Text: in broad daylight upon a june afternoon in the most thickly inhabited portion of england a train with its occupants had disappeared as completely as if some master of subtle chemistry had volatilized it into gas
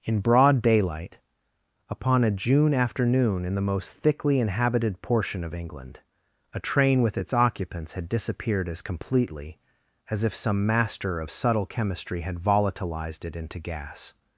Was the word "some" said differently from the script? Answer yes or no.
no